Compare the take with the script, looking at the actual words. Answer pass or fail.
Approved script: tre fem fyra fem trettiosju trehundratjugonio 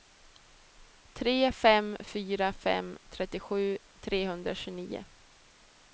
pass